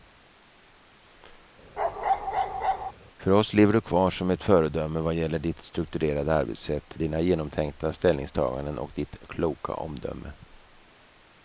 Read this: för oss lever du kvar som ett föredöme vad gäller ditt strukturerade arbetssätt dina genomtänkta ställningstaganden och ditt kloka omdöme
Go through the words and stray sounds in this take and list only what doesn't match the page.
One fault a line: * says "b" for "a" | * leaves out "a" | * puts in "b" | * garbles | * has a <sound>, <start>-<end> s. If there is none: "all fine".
* has a bark, 1.8-2.9 s